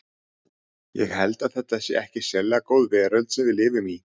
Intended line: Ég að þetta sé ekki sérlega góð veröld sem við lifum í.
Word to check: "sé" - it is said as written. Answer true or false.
true